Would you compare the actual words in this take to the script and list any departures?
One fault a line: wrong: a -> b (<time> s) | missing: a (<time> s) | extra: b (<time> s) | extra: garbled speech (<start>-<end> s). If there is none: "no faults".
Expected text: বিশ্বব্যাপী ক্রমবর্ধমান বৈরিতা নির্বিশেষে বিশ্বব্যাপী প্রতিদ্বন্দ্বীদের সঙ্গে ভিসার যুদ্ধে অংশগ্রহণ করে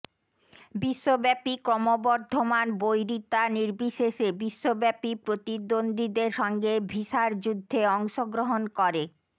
no faults